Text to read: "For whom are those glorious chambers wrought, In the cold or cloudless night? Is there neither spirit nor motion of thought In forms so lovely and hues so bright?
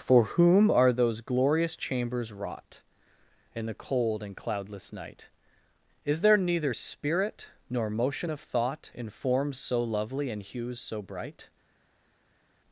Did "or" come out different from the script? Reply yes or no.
yes